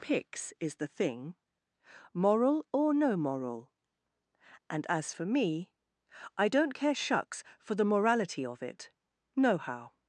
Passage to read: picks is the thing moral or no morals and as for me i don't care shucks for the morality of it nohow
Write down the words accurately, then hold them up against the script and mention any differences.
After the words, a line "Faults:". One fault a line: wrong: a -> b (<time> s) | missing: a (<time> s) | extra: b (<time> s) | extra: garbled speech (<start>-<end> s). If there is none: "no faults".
picks is the thing moral or no moral and as for me i don't care shucks for the morality of it nohow
Faults:
wrong: morals -> moral (3.2 s)